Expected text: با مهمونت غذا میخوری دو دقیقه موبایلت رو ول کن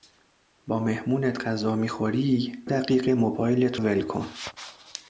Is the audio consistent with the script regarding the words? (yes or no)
no